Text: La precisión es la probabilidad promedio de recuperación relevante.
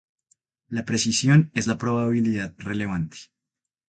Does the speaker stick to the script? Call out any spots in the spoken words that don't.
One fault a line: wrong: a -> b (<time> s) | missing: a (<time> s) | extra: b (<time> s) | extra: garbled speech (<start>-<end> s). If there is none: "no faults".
missing: promedio de recuperación (2.5 s)